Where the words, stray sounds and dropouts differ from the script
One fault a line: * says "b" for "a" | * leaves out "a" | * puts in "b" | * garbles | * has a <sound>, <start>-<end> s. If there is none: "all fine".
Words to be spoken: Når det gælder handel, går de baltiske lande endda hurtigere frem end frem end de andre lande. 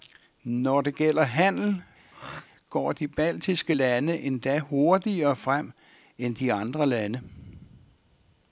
* has a throat clearing, 2.1-2.5 s
* leaves out "frem end"